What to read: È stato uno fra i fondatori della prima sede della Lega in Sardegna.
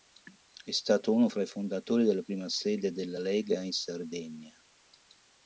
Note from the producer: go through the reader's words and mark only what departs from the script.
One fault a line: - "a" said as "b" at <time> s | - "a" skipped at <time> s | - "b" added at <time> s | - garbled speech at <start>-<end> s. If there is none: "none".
none